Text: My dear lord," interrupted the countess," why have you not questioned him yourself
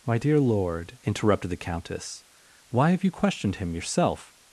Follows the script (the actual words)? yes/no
no